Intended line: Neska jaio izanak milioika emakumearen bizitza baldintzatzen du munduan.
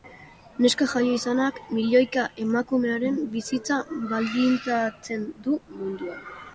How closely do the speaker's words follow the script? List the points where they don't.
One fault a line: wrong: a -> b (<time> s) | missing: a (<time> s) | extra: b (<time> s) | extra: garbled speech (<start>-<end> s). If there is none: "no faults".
no faults